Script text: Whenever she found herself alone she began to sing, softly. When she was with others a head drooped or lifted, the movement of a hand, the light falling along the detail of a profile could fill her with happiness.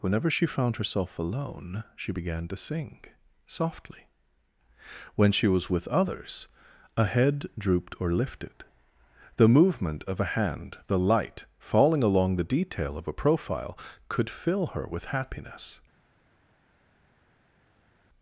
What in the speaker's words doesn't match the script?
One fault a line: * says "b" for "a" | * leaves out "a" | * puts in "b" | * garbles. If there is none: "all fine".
all fine